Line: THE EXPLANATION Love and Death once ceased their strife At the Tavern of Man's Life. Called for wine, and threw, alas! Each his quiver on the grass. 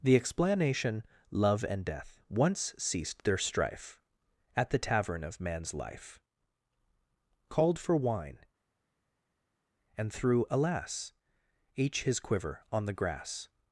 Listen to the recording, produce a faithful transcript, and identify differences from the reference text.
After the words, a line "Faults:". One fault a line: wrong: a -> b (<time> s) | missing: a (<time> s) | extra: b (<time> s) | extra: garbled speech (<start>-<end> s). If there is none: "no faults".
THE EXPLANATION Love and Death once ceased their strife At the Tavern of Man's Life. Called for wine, and threw, alas! Each his quiver on the grass.
Faults:
no faults